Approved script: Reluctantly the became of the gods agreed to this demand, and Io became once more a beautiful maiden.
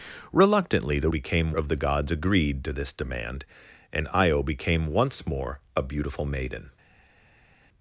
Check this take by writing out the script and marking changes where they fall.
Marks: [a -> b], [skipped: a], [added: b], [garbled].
Reluctantly the became of the gods agreed to this demand, and Io became once more a beautiful maiden.